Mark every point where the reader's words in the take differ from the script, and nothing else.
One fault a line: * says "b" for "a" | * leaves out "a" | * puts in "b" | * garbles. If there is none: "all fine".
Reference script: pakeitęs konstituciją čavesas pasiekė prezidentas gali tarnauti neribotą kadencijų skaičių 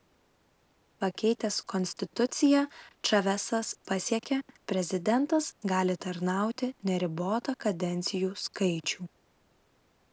all fine